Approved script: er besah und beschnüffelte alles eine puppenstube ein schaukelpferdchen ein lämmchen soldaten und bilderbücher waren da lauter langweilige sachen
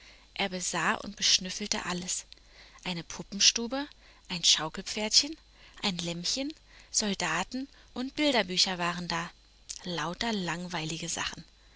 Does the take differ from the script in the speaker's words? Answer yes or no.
no